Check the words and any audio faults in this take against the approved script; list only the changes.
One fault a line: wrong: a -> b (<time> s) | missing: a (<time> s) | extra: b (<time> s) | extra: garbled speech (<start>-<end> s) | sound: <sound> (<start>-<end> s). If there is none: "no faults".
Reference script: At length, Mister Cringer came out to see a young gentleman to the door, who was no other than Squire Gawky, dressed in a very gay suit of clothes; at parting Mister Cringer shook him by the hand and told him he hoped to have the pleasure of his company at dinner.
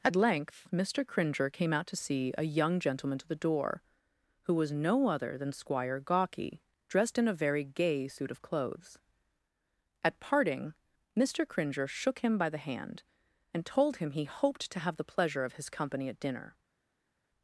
no faults